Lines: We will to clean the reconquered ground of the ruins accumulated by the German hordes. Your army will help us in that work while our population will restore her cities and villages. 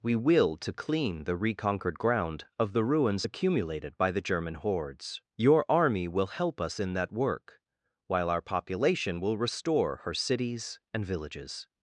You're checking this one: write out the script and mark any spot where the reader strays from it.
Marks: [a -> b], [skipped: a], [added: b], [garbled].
We will to clean the reconquered ground of the ruins accumulated by the German hordes. Your army will help us in that work while our population will restore her cities and villages.